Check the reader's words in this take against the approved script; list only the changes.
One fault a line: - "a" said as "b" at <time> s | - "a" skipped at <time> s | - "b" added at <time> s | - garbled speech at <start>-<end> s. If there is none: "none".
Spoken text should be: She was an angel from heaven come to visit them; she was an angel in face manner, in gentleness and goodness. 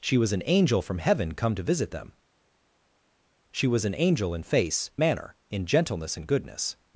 none